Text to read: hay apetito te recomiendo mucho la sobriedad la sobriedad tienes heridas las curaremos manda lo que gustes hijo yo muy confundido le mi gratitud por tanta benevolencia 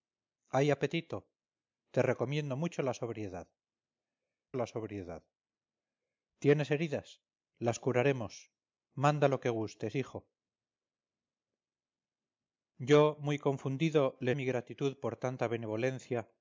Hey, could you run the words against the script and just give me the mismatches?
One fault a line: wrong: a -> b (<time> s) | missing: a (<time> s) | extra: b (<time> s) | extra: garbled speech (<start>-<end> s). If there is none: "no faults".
no faults